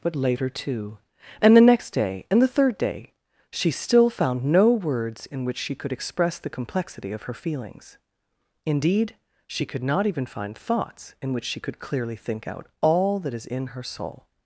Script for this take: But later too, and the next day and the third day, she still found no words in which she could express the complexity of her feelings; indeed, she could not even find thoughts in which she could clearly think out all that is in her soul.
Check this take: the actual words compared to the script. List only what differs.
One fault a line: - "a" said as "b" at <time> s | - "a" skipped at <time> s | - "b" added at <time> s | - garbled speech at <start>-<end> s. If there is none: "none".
none